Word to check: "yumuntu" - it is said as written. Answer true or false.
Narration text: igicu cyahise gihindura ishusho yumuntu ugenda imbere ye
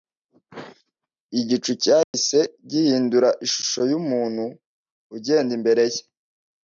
true